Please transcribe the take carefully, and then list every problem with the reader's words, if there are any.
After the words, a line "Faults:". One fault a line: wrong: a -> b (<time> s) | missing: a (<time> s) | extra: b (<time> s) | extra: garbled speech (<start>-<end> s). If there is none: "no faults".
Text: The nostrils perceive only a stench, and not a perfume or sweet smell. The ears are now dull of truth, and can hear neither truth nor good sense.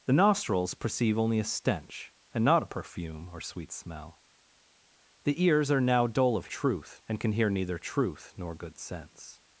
The nostrils perceive only a stench, and not a perfume or sweet smell. The ears are now dull of truth, and can hear neither truth nor good sense.
Faults:
no faults